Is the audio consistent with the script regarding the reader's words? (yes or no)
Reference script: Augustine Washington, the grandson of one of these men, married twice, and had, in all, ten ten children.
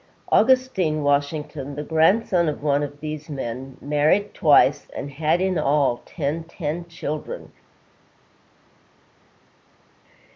yes